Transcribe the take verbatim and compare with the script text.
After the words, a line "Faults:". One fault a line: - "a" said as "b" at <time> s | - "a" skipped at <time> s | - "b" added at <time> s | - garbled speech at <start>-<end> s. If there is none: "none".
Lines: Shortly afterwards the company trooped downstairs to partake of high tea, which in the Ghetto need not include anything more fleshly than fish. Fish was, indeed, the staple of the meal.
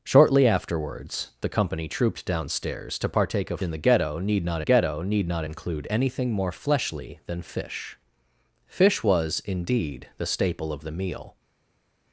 Shortly afterwards the company trooped downstairs to partake of in the Ghetto need not Ghetto need not include anything more fleshly than fish. Fish was, indeed, the staple of the meal.
Faults:
- "high tea which in the" said as "in the Ghetto need not" at 3.6 s